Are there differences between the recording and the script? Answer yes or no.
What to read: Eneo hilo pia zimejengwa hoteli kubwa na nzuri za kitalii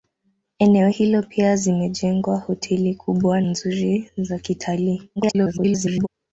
yes